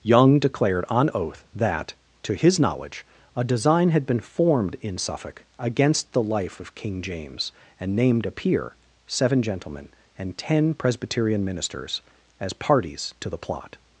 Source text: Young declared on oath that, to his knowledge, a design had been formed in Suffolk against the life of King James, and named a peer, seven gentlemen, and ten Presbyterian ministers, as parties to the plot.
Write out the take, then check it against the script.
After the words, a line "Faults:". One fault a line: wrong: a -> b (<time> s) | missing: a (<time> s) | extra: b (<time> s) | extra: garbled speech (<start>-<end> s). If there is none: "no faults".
Young declared on oath that, to his knowledge, a design had been formed in Suffolk against the life of King James, and named a peer, seven gentlemen, and ten Presbyterian ministers, as parties to the plot.
Faults:
no faults